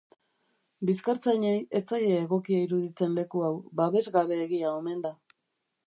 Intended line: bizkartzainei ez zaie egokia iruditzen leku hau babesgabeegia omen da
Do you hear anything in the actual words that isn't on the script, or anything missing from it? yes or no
no